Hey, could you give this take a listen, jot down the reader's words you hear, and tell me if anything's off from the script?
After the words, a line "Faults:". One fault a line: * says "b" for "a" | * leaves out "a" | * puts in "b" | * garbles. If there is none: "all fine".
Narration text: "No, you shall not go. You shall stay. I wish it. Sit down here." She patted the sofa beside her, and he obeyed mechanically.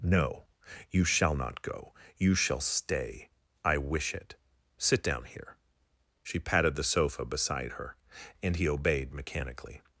"No, you shall not go. You shall stay. I wish it. Sit down here." She patted the sofa beside her, and he obeyed mechanically.
Faults:
all fine